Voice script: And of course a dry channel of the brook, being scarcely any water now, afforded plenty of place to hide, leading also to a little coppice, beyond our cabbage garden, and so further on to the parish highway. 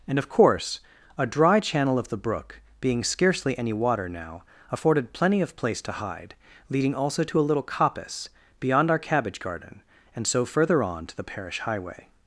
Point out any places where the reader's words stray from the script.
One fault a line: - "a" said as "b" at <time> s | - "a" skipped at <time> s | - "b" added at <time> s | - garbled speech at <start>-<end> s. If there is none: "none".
none